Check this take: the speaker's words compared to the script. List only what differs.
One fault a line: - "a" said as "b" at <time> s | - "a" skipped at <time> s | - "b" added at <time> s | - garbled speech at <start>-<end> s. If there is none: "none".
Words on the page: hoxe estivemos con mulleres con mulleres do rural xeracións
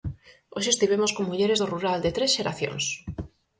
- "con mulleres do rural" said as "do rural de tres" at 1.6 s